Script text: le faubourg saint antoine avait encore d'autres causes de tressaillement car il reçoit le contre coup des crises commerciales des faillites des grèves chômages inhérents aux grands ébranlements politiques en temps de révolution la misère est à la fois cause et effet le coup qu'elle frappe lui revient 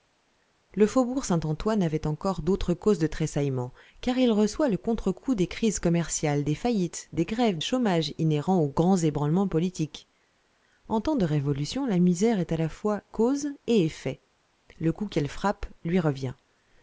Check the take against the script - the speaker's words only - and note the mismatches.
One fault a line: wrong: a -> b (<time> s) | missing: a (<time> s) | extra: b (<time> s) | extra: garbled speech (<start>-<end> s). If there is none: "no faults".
no faults